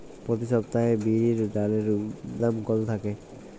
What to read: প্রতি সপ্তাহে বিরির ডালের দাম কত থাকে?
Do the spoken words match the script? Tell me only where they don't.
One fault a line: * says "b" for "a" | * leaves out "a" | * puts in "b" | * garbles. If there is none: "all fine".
all fine